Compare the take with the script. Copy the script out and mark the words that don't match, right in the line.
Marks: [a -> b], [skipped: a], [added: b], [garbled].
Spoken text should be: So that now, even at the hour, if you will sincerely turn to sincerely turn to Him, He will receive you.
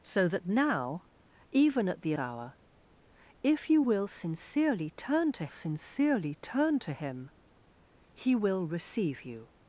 So that now, even at the hour, if you will sincerely turn to sincerely turn to Him, He will receive you.